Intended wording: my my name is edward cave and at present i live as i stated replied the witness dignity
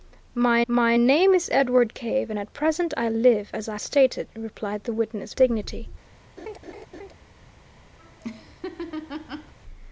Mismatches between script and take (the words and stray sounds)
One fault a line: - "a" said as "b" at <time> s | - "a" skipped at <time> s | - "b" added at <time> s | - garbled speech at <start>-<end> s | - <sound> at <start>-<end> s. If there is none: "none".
- laugh at 6.4-7.1 s
- laugh at 8.0-9.5 s